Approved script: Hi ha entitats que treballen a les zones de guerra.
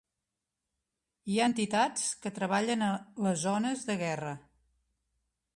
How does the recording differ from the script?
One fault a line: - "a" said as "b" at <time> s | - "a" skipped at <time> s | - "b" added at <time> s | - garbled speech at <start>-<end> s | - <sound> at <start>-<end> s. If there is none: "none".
none